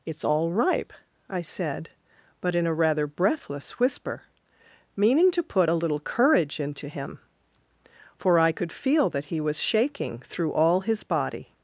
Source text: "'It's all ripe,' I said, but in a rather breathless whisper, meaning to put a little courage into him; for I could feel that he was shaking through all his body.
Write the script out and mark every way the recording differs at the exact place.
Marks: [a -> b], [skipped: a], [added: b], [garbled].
"'It's all ripe,' I said, but in a rather breathless whisper, meaning to put a little courage into him; for I could feel that he was shaking through all his body.